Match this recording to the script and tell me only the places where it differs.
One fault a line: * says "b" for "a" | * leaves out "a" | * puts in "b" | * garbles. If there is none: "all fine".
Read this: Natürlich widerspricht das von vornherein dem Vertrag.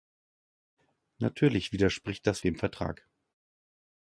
* leaves out "von vornherein"